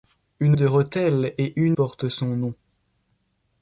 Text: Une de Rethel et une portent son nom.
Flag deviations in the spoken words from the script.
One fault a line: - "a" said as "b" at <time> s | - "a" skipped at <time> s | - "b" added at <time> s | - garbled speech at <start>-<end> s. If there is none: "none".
none